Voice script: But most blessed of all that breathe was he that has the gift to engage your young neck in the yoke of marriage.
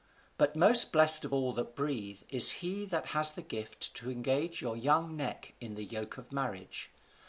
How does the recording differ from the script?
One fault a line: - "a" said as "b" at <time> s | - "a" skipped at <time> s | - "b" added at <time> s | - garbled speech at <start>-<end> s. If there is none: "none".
- "was" said as "is" at 2.3 s